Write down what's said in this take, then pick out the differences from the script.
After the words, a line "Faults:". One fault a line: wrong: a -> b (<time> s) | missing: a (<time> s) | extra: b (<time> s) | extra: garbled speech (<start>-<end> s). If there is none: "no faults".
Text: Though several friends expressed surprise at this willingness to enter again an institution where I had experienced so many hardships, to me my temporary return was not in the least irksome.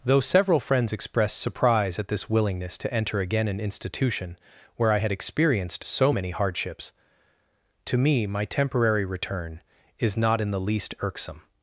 Though several friends expressed surprise at this willingness to enter again an institution where I had experienced so many hardships, to me my temporary return is not in the least irksome.
Faults:
wrong: was -> is (10.0 s)